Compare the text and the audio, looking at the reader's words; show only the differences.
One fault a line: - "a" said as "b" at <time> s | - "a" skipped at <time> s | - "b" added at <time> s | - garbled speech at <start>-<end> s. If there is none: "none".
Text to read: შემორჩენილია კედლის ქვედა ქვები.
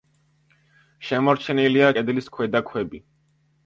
none